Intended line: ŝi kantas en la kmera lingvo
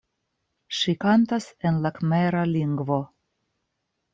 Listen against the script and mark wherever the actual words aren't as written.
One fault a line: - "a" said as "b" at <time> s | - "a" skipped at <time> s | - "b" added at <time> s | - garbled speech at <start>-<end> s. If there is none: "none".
none